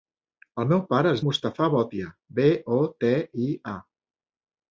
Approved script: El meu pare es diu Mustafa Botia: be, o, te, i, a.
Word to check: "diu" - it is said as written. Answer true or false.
false